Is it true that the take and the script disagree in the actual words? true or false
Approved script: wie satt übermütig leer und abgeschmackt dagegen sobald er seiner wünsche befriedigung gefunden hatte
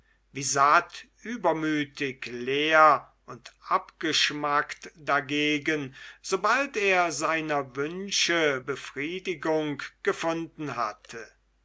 false